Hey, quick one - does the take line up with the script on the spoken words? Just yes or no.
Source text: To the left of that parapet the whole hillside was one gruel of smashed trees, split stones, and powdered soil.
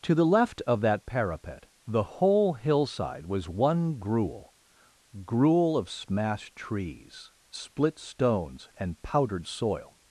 no